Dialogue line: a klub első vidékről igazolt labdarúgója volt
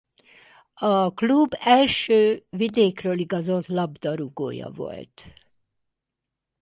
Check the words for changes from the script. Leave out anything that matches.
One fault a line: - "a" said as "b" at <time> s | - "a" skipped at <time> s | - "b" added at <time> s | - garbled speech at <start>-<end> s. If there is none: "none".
none